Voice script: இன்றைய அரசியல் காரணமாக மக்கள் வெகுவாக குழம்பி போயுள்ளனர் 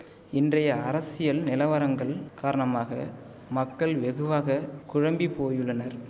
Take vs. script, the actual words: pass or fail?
fail